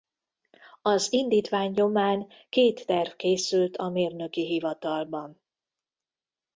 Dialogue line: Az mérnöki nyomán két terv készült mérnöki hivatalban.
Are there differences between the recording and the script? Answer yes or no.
yes